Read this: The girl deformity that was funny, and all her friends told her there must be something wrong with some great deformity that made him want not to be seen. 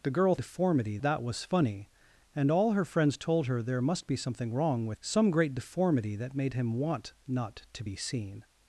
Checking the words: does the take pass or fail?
pass